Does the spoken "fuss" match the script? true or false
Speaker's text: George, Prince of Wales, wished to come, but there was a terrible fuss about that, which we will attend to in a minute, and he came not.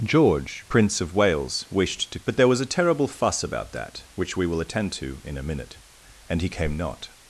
true